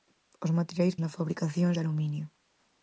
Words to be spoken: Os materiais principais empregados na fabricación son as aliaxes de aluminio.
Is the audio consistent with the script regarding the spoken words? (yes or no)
no